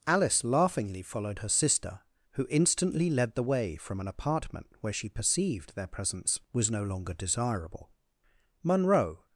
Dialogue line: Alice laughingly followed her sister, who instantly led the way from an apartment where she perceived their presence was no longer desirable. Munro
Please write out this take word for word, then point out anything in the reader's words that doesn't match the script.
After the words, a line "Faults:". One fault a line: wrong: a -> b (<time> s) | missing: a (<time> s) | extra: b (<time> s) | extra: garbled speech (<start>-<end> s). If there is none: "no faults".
Alice laughingly followed her sister, who instantly led the way from an apartment where she perceived their presence was no longer desirable. Munro
Faults:
no faults